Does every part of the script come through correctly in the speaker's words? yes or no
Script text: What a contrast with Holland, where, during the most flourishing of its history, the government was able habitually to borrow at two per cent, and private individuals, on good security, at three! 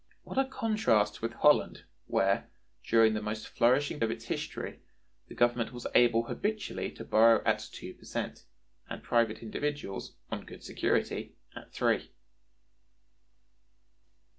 yes